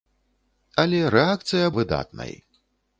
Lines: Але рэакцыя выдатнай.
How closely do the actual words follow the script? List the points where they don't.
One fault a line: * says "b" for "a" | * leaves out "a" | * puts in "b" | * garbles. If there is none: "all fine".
all fine